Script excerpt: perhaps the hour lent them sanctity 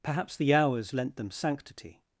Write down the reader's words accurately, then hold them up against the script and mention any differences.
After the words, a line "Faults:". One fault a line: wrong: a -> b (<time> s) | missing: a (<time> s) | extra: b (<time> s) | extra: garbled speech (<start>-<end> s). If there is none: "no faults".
perhaps the hours lent them sanctity
Faults:
wrong: hour -> hours (0.5 s)